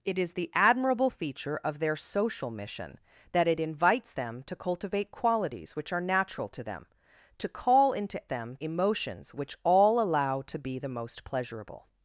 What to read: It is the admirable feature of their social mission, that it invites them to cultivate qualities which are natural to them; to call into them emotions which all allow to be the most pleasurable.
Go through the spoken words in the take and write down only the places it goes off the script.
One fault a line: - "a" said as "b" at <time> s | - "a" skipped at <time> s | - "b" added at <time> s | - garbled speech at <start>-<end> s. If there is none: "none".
none